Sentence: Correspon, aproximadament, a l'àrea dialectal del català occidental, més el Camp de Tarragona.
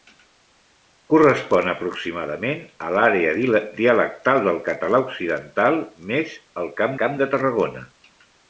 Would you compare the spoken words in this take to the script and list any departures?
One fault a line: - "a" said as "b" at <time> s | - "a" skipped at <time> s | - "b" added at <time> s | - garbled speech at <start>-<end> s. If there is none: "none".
- "Camp" added at 7.0 s